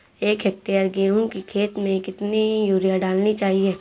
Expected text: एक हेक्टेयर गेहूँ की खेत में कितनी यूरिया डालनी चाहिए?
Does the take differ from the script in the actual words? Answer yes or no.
no